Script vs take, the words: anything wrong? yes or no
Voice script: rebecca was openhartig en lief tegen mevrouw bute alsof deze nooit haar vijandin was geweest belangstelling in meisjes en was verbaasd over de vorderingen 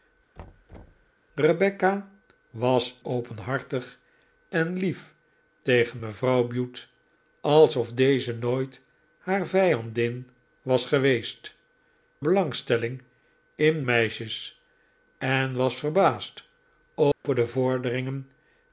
no